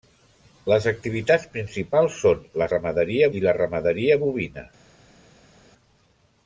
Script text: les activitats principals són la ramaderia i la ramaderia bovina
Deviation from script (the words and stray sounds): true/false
false